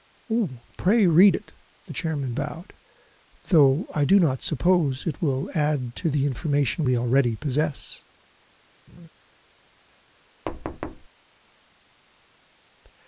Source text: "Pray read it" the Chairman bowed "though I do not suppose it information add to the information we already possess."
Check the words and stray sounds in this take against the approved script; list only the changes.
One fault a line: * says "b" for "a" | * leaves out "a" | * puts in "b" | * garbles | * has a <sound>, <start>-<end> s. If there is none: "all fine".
* says "will" for "information"
* has a laugh, 8.9-9.1 s
* has a thud, 10.5-11.1 s